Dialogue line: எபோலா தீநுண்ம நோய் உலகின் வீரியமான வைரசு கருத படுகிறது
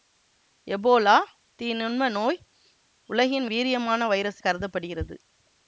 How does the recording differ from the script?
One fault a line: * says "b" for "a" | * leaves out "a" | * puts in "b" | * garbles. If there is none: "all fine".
all fine